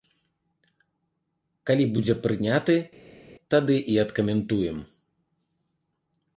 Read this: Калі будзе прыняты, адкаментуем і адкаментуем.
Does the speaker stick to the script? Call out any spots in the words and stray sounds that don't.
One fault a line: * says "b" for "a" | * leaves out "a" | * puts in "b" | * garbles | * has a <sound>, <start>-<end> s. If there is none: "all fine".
* says "тады" for "адкаментуем"